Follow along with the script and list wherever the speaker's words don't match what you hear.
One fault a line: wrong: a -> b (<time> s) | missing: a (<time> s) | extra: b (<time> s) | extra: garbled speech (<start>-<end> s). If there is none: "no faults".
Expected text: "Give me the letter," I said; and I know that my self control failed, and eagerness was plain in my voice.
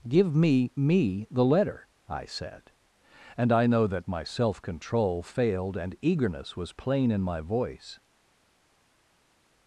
extra: me (0.8 s)